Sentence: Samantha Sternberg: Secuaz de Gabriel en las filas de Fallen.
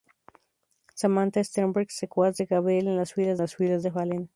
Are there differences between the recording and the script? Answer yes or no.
yes